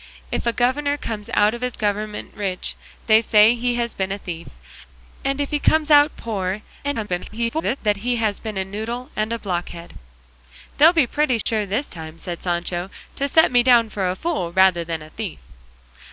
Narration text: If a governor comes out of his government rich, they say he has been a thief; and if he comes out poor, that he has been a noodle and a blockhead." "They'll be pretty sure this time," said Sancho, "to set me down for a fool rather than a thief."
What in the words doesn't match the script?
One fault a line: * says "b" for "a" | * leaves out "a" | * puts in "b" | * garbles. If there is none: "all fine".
* garbles